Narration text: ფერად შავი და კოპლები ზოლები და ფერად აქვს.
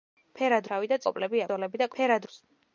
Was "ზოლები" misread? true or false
false